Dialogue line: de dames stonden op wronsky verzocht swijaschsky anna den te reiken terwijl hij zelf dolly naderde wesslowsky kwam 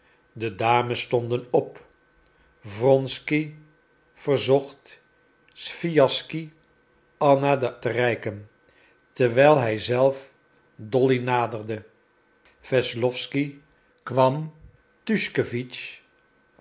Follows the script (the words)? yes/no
yes